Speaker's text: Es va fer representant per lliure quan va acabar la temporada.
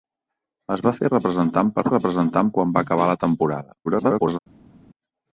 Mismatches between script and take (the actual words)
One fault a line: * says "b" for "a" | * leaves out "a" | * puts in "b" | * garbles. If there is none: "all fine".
* says "representant" for "lliure"
* garbles